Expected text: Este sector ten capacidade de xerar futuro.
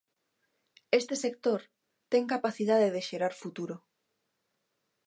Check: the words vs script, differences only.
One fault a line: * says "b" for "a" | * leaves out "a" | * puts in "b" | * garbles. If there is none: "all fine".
all fine